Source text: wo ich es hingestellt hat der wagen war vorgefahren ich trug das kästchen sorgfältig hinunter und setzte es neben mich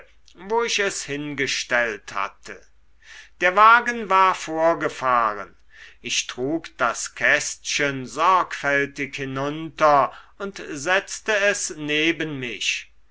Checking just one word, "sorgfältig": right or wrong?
right